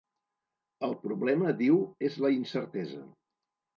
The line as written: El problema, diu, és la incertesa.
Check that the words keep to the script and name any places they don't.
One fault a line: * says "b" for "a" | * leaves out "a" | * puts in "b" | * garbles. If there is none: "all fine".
all fine